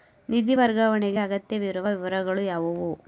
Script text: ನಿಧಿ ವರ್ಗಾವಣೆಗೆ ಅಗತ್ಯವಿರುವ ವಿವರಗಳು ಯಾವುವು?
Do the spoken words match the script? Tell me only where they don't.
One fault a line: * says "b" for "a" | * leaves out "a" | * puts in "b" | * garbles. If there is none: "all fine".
all fine